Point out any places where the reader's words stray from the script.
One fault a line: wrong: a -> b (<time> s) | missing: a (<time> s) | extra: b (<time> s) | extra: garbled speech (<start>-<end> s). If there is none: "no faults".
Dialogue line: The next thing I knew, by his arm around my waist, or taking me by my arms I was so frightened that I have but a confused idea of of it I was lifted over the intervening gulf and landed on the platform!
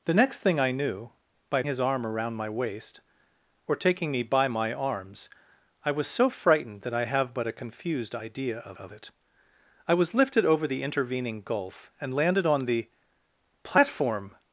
no faults